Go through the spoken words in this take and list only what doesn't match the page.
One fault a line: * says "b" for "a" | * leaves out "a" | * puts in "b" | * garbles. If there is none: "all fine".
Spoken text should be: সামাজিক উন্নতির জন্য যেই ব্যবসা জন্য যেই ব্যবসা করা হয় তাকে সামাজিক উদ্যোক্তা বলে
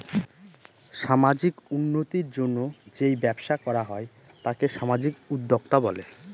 * leaves out "জন্য যেই ব্যবসা"